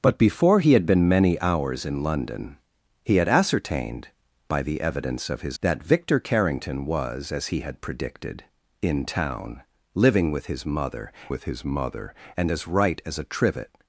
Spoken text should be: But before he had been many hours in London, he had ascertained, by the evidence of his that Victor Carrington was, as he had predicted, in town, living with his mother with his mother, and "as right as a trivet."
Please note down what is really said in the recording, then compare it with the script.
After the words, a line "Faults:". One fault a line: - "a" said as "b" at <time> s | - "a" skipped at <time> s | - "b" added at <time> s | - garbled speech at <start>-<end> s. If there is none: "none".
But before he had been many hours in London, he had ascertained, by the evidence of his that Victor Carrington was, as he had predicted, in town, living with his mother with his mother, and "as right as a trivet."
Faults:
none